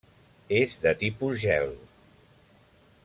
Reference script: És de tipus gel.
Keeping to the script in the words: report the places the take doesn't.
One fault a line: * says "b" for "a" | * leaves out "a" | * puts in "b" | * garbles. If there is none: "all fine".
all fine